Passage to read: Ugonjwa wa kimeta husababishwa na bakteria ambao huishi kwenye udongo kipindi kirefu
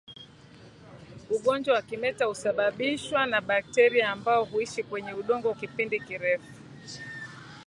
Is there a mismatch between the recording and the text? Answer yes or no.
no